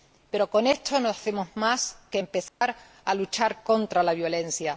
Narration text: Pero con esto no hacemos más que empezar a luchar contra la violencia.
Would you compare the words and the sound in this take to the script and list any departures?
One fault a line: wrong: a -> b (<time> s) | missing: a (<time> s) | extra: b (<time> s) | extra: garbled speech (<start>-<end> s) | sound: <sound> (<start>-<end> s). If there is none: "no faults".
sound: dropout (2.5-2.6 s)